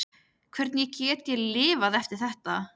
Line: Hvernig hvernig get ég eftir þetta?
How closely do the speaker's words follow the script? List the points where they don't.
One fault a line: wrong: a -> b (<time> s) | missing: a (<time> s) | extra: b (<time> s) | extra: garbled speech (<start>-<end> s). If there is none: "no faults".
missing: hvernig (0.9 s)
extra: lifað (1.6 s)